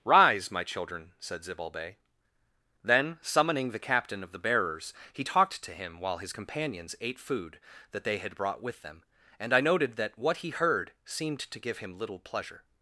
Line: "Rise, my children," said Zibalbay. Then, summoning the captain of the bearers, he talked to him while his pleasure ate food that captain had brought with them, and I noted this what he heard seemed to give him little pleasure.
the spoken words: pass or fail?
fail